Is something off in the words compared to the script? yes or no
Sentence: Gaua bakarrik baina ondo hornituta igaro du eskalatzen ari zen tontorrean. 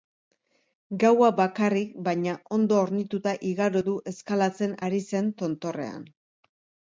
no